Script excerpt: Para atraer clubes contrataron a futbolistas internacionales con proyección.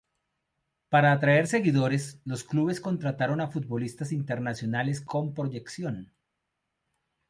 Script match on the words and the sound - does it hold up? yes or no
no